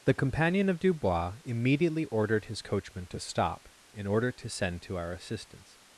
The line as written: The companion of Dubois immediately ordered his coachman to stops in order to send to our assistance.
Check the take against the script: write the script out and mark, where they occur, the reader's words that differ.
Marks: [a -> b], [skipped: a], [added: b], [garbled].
The companion of Dubois immediately ordered his coachman to [stops -> stop] in order to send to our assistance.